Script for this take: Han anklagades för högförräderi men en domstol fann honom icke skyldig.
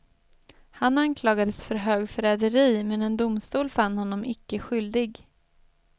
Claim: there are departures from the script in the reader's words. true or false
false